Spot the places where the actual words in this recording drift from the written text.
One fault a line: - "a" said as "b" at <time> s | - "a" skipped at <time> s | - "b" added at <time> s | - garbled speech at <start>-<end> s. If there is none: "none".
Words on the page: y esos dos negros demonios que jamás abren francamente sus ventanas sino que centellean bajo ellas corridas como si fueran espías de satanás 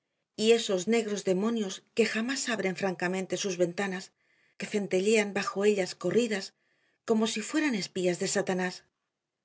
- "dos" skipped at 0.9 s
- "sino" skipped at 4.1 s